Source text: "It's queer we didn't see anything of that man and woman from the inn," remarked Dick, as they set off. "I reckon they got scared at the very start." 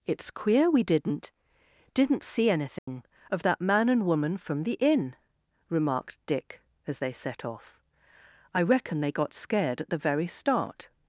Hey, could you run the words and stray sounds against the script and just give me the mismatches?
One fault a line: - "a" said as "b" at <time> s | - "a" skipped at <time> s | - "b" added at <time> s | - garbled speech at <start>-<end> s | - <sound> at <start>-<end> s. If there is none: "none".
- "didn't" added at 1.9 s
- dropout at 2.8-2.9 s